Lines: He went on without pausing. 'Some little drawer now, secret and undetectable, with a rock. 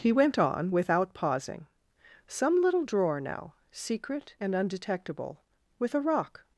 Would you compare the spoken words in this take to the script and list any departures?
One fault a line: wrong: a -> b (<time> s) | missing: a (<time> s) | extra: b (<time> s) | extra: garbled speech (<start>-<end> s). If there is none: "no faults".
no faults